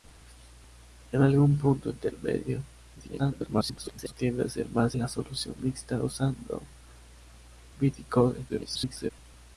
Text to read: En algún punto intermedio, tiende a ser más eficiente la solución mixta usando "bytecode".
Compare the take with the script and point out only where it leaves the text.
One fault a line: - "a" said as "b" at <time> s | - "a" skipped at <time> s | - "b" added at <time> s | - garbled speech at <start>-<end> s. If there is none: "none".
- garbled speech at 3.0-4.1 s
- "eficiente" skipped at 5.0 s
- garbled speech at 8.5-9.1 s